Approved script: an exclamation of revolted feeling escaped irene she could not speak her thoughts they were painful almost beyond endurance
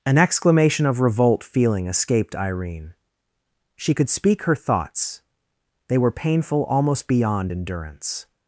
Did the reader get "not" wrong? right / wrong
wrong